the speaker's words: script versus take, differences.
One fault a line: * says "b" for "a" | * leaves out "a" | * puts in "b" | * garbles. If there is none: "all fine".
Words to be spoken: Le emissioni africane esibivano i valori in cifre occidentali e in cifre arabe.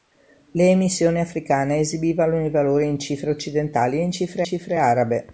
* puts in "cifre"